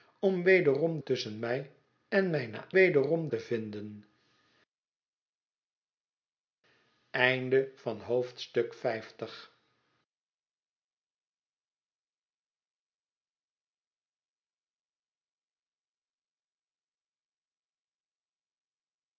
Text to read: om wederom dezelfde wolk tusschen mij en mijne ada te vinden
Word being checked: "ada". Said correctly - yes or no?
no